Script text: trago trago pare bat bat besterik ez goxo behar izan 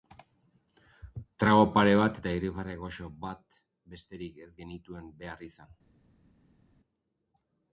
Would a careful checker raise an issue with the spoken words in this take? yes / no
yes